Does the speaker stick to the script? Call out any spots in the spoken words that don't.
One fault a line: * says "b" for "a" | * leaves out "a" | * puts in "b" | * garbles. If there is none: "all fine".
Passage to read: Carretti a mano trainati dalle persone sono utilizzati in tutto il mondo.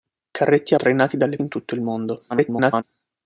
* leaves out "mano"
* leaves out "persone sono utilizzati"
* garbles